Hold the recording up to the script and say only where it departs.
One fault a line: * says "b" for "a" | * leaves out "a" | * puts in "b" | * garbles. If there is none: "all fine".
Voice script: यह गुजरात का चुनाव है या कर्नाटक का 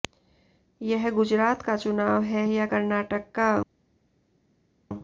all fine